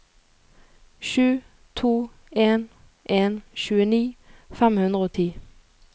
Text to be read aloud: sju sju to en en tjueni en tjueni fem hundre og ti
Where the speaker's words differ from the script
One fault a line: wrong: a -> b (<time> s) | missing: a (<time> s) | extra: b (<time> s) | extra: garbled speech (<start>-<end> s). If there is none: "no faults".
missing: sju (1.4 s)
missing: en tjueni (4.0 s)